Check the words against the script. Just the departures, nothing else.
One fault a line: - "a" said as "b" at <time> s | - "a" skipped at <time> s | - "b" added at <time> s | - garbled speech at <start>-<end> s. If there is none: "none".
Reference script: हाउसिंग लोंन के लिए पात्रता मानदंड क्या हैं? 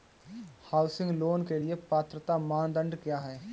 none